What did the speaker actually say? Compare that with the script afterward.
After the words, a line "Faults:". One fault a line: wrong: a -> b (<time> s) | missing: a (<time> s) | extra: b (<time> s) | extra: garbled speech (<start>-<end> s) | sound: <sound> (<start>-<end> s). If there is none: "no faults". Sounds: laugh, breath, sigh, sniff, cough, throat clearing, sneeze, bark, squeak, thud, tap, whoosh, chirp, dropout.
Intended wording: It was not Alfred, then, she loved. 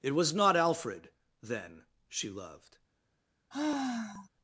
It was not Alfred, then, she loved.
Faults:
sound: sigh (3.5-4.3 s)